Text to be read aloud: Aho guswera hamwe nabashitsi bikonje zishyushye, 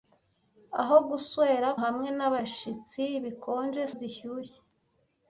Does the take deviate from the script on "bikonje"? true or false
false